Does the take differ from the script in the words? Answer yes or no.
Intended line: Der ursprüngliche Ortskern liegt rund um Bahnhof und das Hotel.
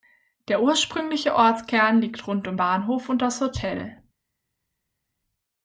no